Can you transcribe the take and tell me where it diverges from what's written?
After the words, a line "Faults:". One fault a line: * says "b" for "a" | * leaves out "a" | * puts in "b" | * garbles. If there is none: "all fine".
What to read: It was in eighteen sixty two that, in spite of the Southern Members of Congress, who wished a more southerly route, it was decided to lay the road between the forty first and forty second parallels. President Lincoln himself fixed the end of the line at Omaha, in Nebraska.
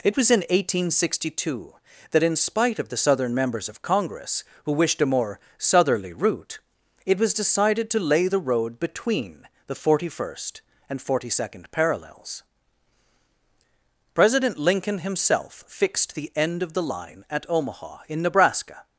It was in eighteen sixty two that, in spite of the Southern Members of Congress, who wished a more southerly route, it was decided to lay the road between the forty first and forty second parallels. President Lincoln himself fixed the end of the line at Omaha, in Nebraska.
Faults:
all fine